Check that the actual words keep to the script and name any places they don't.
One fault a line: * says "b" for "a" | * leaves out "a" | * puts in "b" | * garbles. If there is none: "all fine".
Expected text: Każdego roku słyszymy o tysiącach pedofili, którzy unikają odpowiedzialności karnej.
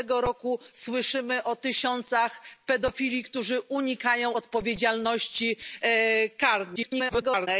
* garbles